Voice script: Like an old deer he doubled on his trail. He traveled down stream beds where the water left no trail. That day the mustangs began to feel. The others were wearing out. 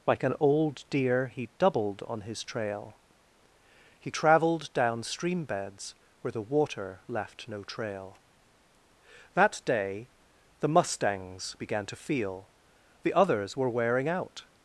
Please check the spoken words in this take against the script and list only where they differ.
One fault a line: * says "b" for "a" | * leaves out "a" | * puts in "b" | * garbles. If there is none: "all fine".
all fine